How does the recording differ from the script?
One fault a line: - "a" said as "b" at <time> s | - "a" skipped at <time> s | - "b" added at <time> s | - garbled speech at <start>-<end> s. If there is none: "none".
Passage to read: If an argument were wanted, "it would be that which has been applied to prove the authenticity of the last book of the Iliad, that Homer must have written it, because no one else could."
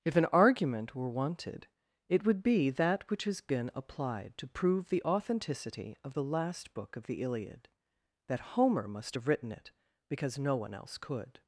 none